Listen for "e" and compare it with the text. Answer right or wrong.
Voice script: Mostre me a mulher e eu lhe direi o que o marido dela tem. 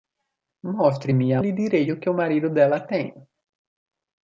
wrong